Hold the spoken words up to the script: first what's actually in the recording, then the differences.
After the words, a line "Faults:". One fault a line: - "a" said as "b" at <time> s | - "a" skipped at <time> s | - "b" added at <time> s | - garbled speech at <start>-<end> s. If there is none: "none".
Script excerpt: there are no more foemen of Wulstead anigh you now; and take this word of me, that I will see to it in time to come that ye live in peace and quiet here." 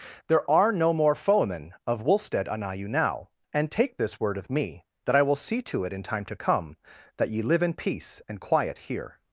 there are no more foemen of Wulstead anigh you now; and take this word of me, that I will see to it in time to come that ye live in peace and quiet here."
Faults:
none